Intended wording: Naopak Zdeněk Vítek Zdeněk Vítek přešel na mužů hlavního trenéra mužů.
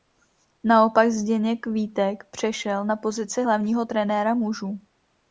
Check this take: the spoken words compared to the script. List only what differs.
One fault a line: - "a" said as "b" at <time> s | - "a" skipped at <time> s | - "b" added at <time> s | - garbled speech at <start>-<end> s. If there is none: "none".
- "Zdeněk Vítek" skipped at 2.2 s
- "mužů" said as "pozici" at 3.0 s